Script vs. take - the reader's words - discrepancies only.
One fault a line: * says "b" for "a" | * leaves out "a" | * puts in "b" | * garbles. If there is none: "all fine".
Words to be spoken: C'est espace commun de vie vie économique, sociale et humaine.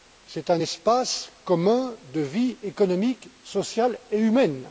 * puts in "un"
* leaves out "vie"